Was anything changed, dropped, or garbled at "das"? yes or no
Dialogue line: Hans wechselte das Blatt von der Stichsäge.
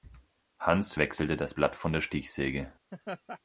no